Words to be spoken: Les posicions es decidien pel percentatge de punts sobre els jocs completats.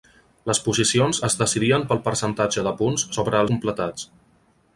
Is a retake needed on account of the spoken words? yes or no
yes